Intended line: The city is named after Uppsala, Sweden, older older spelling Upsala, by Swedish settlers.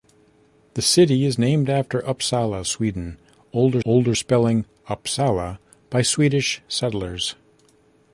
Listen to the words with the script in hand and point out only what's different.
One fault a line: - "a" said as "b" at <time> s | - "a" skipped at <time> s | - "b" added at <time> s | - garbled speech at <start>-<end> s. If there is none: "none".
none